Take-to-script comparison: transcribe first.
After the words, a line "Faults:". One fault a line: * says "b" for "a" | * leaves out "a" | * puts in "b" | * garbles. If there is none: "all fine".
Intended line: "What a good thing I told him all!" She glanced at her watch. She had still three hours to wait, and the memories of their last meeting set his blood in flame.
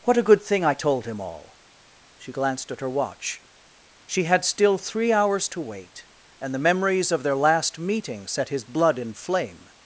"What a good thing I told him all!" She glanced at her watch. She had still three hours to wait, and the memories of their last meeting set his blood in flame.
Faults:
all fine